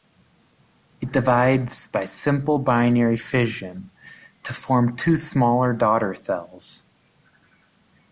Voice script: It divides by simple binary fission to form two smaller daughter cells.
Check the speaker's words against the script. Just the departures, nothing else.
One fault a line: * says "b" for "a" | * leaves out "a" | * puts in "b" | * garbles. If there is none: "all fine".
all fine